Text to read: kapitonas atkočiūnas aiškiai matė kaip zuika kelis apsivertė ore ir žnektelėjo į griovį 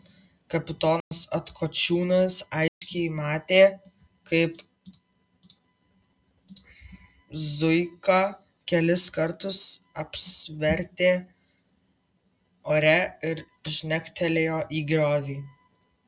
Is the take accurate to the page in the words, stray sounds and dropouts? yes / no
no